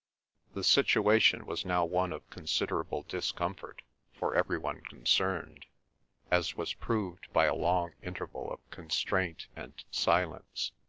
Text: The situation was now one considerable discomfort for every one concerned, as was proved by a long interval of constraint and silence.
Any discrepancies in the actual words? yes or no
yes